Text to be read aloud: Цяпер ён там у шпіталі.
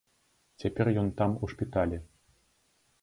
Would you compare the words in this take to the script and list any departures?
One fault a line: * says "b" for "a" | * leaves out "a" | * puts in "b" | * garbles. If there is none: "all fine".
all fine